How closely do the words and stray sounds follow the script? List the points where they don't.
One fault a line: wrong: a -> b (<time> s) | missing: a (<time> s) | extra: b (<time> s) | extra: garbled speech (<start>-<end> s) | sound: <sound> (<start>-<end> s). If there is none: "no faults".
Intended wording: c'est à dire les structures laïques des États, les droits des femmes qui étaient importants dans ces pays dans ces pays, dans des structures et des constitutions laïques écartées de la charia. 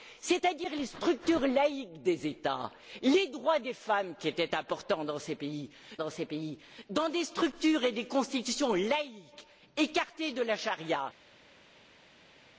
no faults